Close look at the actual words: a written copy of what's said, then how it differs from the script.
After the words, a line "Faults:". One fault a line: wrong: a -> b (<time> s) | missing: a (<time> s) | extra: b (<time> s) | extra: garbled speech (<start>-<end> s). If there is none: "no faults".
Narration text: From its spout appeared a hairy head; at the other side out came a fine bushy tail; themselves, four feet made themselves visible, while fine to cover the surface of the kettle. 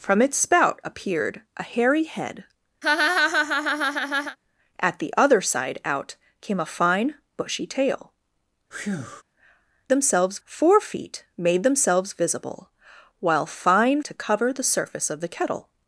From its spout appeared a hairy head; at the other side out came a fine bushy tail; themselves, four feet made themselves visible, while fine to cover the surface of the kettle.
Faults:
no faults